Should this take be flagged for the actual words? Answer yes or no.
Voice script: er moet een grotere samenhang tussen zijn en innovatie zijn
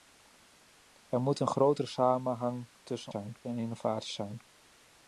no